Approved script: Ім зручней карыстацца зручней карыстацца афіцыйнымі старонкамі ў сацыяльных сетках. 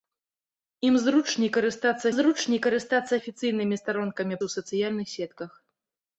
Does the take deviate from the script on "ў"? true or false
false